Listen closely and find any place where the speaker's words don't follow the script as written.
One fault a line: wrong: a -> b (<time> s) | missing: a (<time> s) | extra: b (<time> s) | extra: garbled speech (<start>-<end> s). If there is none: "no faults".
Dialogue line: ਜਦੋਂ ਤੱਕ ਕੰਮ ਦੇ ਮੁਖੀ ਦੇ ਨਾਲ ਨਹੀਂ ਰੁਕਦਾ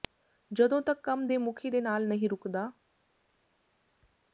no faults